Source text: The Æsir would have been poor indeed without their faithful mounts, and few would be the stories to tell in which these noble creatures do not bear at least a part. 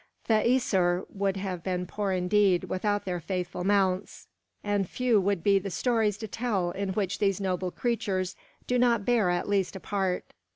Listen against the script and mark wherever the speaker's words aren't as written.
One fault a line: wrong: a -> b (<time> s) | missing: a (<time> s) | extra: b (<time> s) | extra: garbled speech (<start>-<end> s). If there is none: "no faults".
no faults